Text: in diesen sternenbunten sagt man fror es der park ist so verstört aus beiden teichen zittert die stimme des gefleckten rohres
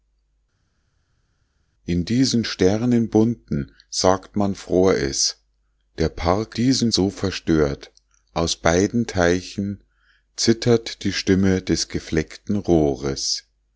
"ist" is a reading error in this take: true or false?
true